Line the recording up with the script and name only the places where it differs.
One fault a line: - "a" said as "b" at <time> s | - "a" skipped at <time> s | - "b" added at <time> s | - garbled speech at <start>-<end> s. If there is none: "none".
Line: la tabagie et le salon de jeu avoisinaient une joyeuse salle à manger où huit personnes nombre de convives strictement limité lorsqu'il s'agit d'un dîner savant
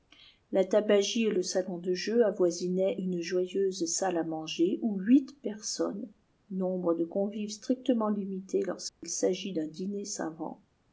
none